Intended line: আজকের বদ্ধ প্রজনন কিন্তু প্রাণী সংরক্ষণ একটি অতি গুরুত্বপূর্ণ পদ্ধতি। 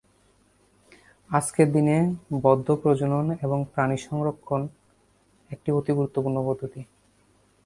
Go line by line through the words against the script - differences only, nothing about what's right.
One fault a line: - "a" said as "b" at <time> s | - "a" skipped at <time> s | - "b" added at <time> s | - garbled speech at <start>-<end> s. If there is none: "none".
- "দিনে" added at 1.7 s
- "কিন্তু" said as "এবং" at 3.4 s